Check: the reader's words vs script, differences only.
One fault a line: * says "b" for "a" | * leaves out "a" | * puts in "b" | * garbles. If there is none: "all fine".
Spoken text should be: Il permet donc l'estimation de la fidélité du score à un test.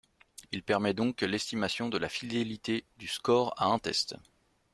all fine